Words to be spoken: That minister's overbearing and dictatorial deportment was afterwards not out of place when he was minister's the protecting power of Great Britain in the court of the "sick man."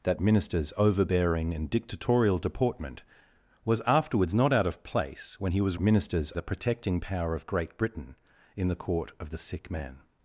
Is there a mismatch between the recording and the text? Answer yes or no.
no